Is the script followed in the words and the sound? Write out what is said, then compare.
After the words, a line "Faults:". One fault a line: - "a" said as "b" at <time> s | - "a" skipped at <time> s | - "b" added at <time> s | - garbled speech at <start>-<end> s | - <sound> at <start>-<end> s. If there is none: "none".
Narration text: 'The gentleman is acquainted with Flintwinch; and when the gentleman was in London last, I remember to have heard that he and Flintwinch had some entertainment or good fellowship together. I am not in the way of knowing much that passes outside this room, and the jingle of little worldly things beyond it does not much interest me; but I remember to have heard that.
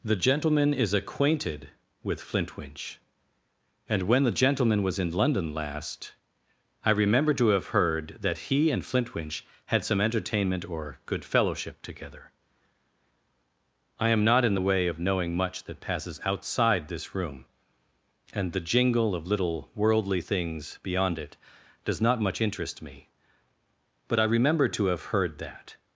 'The gentleman is acquainted with Flintwinch; and when the gentleman was in London last, I remember to have heard that he and Flintwinch had some entertainment or good fellowship together. I am not in the way of knowing much that passes outside this room, and the jingle of little worldly things beyond it does not much interest me; but I remember to have heard that.
Faults:
none